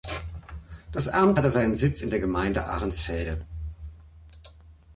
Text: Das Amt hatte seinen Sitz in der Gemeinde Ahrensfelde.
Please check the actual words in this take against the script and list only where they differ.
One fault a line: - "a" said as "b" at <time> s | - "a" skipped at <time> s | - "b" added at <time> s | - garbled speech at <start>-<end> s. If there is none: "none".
none